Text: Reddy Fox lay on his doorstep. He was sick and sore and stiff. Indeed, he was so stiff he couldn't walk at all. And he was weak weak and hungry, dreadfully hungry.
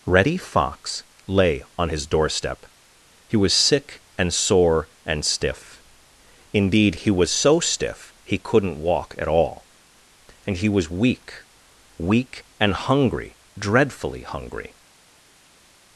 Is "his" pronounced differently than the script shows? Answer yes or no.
no